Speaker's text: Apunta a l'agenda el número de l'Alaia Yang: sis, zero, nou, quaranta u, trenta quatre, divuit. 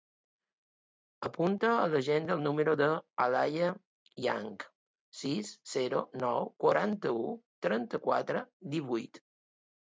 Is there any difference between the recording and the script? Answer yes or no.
no